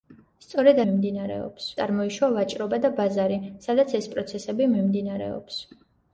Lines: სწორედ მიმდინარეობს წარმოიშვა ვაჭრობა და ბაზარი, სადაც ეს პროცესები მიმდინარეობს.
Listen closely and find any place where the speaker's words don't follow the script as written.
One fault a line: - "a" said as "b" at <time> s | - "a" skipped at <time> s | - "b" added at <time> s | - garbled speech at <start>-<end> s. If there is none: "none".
none